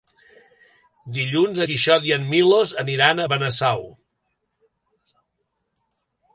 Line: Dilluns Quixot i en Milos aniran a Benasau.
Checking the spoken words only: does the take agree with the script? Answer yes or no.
yes